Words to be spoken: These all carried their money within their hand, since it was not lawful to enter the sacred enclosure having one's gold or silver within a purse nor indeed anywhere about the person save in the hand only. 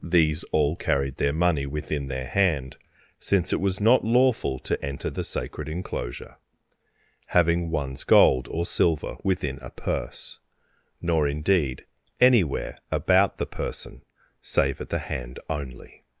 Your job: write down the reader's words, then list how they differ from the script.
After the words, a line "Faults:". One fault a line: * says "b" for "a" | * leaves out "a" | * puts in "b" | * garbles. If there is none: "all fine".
These all carried their money within their hand, since it was not lawful to enter the sacred enclosure having one's gold or silver within a purse nor indeed anywhere about the person save at the hand only.
Faults:
* says "at" for "in"